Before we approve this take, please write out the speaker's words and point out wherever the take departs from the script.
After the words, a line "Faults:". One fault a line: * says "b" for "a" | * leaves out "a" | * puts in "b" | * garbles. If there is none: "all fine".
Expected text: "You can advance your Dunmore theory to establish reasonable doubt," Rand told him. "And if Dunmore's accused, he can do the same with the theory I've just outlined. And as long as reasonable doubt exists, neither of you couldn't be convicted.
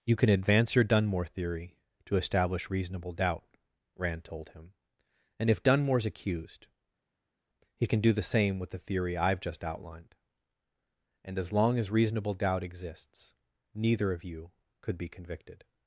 "You can advance your Dunmore theory to establish reasonable doubt," Rand told him. "And if Dunmore's accused, he can do the same with the theory I've just outlined. And as long as reasonable doubt exists, neither of you could be convicted.
Faults:
* says "could" for "couldn't"